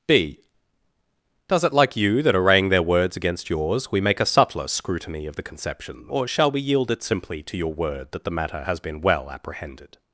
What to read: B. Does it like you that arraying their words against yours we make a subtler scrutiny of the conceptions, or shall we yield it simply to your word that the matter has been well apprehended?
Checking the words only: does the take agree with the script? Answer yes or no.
no